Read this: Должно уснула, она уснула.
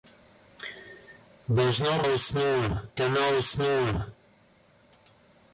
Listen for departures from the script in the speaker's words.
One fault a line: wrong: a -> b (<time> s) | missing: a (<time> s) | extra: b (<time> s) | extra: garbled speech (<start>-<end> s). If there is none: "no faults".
no faults